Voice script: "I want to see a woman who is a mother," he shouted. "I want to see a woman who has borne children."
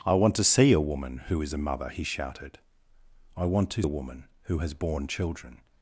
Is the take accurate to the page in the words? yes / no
no